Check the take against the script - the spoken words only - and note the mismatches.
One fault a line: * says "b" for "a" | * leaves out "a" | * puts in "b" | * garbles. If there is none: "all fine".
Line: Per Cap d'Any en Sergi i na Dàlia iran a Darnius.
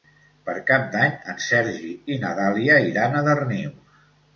all fine